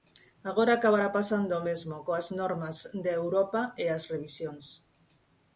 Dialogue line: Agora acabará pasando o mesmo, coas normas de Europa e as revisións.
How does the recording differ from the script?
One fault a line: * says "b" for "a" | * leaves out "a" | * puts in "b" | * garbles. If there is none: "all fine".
all fine